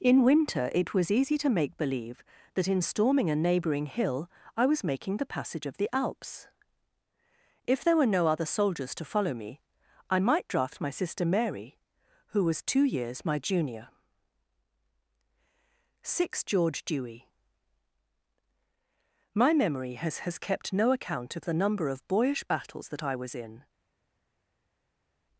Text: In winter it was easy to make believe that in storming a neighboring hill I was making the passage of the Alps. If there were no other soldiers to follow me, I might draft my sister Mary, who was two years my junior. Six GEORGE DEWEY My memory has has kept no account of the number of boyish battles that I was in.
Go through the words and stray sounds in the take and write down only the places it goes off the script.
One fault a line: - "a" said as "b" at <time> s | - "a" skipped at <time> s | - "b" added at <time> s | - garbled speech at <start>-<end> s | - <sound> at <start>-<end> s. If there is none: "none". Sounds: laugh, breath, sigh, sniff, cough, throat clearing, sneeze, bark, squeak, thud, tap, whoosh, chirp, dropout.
none